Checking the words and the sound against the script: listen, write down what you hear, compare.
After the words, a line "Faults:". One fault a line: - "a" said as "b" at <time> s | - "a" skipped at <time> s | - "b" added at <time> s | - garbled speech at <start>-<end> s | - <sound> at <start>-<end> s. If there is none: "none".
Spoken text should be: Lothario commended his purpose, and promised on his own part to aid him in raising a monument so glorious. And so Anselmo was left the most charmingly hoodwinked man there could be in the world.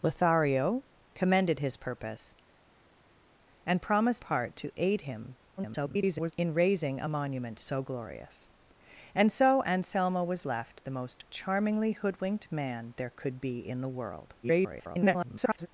Lothario commended his purpose, and promised part to aid him [garbled] in raising a monument so glorious. And so Anselmo was left the most charmingly hoodwinked man there could be in the world. [garbled]
Faults:
- "on his own" skipped at 4.2 s
- garbled speech at 5.6-6.3 s
- garbled speech at 14.4-15.7 s